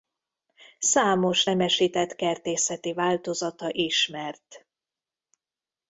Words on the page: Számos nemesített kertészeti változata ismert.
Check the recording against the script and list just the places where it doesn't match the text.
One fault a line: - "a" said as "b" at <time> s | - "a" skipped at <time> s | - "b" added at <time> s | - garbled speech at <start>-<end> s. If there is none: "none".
none